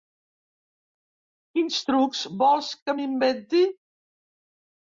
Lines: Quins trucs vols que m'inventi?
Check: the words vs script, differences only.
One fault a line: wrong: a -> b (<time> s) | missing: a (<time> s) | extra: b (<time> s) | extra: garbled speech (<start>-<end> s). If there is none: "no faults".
no faults